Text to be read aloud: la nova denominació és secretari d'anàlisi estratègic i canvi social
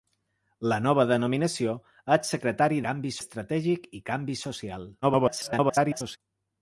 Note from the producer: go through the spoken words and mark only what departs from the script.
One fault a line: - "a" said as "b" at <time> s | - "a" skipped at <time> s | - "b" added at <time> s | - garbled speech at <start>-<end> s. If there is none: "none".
- "d'anàlisi" said as "canvi" at 2.9 s
- garbled speech at 5.0-6.2 s